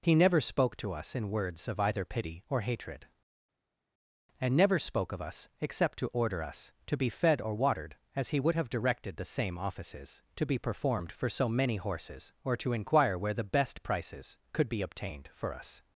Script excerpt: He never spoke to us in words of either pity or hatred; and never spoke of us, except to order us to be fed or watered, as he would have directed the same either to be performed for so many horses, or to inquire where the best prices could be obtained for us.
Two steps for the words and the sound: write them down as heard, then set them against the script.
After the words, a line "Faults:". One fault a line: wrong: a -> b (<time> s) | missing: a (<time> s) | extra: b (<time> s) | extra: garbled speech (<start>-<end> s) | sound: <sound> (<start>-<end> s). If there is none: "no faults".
He never spoke to us in words of either pity or hatred; and never spoke of us, except to order us to be fed or watered, as he would have directed the same offices to be performed for so many horses, or to inquire where the best prices could be obtained for us.
Faults:
wrong: either -> offices (9.6 s)